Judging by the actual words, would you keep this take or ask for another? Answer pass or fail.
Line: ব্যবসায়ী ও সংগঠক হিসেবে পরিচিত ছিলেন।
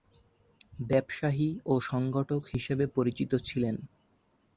pass